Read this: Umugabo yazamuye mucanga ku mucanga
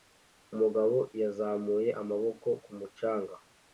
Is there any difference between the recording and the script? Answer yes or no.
yes